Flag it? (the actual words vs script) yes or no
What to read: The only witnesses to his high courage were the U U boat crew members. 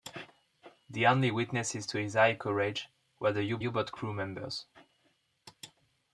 no